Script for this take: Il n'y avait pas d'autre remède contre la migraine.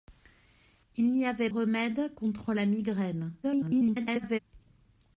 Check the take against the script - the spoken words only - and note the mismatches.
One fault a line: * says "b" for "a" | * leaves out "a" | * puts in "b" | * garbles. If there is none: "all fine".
* leaves out "pas d'autre"
* garbles